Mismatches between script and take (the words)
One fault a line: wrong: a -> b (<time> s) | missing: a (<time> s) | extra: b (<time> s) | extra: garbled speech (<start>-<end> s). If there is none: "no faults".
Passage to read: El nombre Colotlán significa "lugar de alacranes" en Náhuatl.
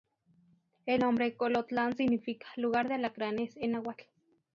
no faults